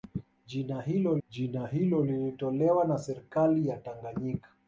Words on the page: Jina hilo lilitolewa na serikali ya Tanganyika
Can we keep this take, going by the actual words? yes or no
no